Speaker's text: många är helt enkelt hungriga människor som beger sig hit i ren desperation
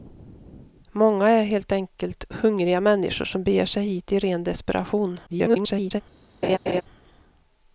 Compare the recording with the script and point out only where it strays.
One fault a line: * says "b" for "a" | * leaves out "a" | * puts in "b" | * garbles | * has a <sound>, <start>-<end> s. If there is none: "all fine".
* garbles
* has a laugh, 6.4-6.8 s